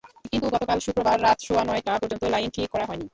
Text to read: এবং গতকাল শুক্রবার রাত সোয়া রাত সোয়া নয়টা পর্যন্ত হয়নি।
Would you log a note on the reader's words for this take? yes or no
yes